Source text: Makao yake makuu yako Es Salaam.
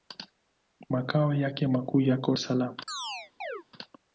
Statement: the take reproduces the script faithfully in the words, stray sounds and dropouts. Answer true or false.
false